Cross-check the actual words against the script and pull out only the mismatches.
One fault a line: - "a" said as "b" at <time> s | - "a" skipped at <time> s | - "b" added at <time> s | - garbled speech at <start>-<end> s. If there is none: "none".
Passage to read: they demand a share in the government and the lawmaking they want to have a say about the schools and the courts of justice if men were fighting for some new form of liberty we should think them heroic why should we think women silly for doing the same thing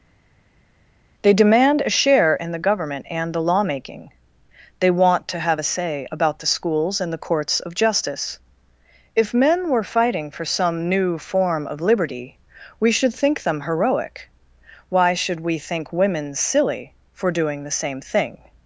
none